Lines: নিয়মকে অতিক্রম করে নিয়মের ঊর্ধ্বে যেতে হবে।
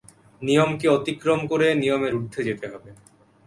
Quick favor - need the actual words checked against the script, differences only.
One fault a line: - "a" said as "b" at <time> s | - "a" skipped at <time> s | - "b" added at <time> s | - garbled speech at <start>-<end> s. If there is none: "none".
none